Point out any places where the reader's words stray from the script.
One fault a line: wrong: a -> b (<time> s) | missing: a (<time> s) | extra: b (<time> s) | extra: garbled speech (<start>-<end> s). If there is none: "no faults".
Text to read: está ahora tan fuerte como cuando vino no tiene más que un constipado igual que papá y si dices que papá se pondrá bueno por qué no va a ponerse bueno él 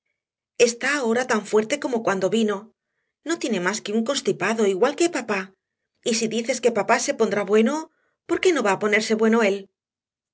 no faults